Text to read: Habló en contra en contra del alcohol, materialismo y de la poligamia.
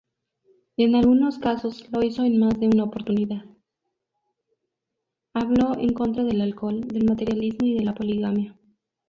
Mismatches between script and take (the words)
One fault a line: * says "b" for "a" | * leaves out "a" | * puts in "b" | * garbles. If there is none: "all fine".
* says "del alcohol" for "en contra"
* leaves out "alcohol"